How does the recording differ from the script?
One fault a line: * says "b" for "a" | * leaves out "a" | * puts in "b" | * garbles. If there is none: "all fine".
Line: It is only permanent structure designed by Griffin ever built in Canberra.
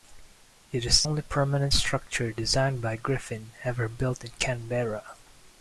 all fine